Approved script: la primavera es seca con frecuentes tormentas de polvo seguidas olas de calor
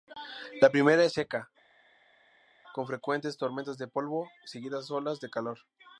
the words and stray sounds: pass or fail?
pass